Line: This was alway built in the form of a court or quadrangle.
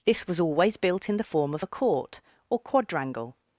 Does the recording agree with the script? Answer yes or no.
no